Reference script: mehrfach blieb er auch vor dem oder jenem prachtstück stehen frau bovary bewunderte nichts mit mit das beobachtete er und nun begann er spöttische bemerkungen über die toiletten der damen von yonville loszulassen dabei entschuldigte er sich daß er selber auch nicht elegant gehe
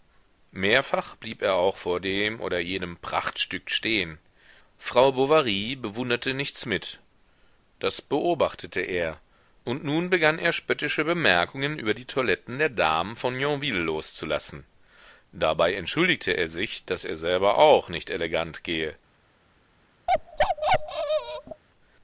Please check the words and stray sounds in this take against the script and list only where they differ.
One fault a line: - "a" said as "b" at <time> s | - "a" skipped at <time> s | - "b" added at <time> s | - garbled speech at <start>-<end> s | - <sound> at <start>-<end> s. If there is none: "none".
- "mit" skipped at 7.0 s
- bark at 20.1-21.6 s